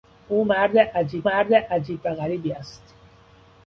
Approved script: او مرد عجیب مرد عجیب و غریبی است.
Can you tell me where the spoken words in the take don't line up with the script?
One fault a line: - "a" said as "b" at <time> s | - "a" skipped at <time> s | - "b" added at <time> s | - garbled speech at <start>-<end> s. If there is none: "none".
none